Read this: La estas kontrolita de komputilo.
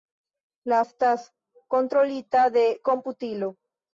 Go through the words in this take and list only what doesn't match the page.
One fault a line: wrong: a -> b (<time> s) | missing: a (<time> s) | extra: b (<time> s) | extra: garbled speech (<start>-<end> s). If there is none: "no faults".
no faults